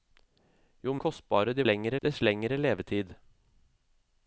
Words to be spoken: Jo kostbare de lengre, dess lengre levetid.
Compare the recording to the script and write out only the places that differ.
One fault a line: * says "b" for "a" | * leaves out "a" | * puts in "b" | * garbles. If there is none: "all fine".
all fine